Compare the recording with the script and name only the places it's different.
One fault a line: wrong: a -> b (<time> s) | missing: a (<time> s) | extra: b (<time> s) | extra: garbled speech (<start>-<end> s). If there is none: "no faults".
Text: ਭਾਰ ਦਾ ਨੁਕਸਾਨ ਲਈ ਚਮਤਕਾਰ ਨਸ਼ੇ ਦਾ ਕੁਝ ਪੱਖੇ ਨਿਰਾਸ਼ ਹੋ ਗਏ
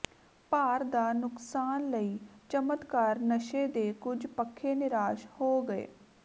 wrong: ਦਾ -> ਦੇ (3.7 s)